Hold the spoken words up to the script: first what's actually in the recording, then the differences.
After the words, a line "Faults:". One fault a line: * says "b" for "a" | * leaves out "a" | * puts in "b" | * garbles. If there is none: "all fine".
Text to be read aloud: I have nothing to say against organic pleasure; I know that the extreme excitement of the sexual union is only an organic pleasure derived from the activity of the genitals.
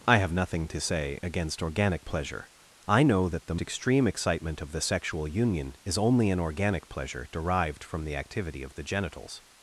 I have nothing to say against organic pleasure; I know that the extreme excitement of the sexual union is only an organic pleasure derived from the activity of the genitals.
Faults:
all fine